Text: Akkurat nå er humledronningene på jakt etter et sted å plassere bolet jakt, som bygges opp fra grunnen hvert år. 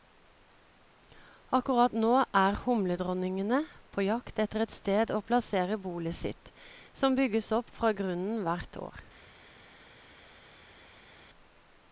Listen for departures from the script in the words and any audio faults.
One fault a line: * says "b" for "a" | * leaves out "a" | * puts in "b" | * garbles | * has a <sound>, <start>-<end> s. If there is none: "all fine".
* says "sitt" for "jakt"